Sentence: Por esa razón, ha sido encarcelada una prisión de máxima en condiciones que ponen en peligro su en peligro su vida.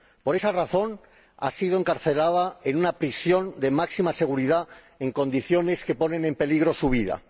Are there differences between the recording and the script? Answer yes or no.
yes